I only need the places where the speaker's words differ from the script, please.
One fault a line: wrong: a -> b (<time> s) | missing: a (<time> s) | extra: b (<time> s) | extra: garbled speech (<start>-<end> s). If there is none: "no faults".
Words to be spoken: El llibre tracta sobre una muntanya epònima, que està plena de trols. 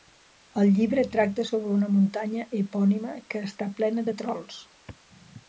no faults